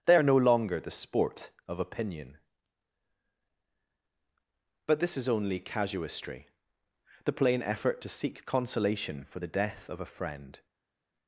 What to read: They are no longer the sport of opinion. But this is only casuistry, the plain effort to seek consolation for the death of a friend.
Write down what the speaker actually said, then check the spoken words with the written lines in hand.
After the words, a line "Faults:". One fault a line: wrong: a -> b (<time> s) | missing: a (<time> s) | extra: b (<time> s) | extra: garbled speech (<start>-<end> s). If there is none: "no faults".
They are no longer the sport of opinion. But this is only casuistry, the plain effort to seek consolation for the death of a friend.
Faults:
no faults